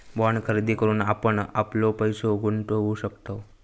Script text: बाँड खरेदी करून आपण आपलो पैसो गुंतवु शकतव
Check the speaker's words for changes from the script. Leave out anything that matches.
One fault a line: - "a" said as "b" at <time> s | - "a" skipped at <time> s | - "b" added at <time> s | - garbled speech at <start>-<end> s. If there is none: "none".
none